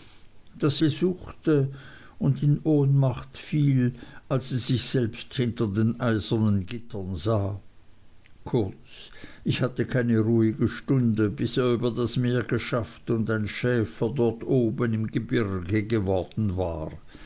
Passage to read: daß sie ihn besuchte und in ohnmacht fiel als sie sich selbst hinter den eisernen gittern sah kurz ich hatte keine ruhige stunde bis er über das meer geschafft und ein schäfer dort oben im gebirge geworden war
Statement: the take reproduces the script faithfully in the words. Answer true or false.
false